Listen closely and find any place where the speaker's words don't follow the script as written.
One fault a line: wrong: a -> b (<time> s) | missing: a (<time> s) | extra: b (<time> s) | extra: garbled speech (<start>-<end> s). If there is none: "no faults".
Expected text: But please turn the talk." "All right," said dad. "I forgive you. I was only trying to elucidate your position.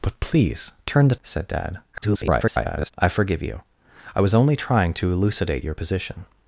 missing: talk All right (1.1 s)
extra: garbled speech (1.9-2.9 s)